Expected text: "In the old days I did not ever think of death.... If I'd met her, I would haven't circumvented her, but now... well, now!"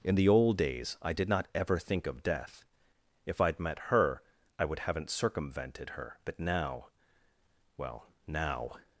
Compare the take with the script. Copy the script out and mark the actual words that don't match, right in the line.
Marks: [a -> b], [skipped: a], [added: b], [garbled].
"In the old days I did not ever think of death.... If I'd met her, I would haven't circumvented her, but now... well, now!"